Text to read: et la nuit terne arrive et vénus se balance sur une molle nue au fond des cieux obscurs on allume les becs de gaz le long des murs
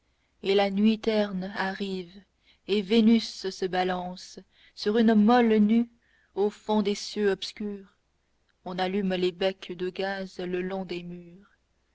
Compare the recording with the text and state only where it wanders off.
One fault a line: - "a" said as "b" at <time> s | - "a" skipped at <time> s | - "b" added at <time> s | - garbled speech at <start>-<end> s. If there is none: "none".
none